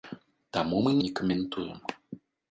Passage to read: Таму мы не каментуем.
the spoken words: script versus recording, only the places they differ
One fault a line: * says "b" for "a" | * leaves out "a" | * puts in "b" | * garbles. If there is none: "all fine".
all fine